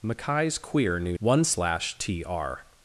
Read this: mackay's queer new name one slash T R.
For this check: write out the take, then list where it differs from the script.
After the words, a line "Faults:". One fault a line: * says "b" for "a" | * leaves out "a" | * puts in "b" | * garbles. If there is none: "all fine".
mackay's queer new one slash T R.
Faults:
* leaves out "name"